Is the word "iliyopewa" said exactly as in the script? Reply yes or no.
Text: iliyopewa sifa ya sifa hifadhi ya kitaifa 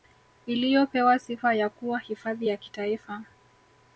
yes